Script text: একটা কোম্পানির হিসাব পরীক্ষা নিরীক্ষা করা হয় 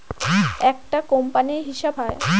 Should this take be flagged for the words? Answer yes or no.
yes